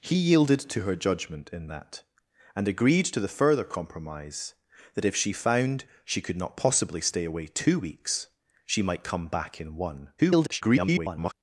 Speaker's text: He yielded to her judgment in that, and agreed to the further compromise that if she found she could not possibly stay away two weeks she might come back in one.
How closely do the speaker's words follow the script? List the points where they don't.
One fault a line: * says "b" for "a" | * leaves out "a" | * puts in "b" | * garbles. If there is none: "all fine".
* garbles